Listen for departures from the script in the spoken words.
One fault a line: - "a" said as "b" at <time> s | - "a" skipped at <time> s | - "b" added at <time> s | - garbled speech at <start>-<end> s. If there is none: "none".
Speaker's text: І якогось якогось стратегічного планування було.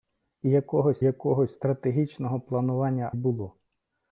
none